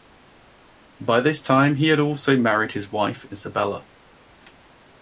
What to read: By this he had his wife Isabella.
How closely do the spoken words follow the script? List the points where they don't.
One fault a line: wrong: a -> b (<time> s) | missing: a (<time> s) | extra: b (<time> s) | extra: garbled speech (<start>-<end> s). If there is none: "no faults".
extra: time (1.4 s)
extra: also married (2.0 s)